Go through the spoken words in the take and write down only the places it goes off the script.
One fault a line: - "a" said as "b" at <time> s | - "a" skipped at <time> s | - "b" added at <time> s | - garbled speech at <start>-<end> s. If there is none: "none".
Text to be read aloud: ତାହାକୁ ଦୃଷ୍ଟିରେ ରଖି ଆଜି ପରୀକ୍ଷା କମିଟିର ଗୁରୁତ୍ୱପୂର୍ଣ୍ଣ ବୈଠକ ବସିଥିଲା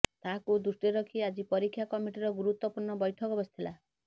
none